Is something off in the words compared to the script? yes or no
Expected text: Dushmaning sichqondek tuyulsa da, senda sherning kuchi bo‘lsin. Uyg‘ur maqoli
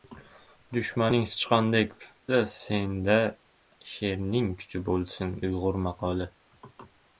yes